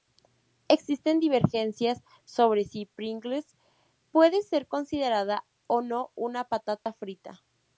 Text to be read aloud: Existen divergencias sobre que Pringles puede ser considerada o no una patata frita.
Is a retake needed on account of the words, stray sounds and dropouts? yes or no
yes